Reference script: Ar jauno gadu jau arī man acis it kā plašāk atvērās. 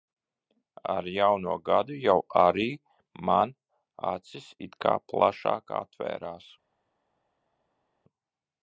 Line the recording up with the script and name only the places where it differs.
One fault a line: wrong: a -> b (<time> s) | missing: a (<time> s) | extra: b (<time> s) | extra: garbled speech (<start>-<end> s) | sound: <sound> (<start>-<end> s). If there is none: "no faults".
no faults